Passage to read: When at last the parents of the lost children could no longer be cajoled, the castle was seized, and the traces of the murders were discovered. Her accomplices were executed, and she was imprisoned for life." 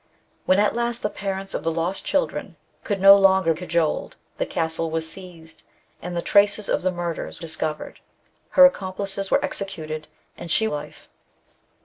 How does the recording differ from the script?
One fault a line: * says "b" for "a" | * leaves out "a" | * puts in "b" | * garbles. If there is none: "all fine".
* leaves out "be"
* leaves out "were"
* leaves out "was imprisoned for"